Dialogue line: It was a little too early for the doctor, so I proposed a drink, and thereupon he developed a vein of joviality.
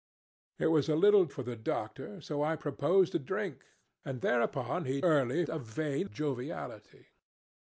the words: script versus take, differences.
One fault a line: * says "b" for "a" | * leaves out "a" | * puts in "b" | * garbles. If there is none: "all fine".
* leaves out "too early"
* says "early" for "developed"
* leaves out "of"